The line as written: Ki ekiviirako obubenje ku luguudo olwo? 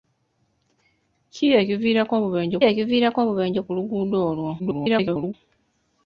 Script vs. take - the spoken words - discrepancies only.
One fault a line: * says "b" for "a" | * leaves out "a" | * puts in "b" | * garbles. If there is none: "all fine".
* puts in "ekiviirako obubenje"
* garbles